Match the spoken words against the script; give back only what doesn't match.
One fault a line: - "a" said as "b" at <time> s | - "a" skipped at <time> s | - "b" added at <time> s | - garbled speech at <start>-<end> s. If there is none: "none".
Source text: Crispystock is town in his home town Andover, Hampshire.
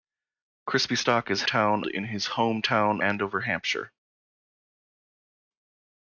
none